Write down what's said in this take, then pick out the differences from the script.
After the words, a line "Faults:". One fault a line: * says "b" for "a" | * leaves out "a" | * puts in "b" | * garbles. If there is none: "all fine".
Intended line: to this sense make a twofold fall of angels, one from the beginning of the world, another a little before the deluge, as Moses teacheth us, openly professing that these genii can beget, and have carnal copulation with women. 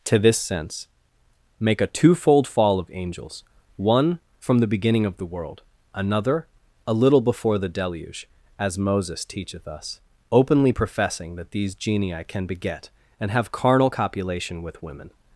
to this sense make a twofold fall of angels, one from the beginning of the world, another a little before the deluge, as Moses teacheth us, openly professing that these genii can beget, and have carnal copulation with women.
Faults:
all fine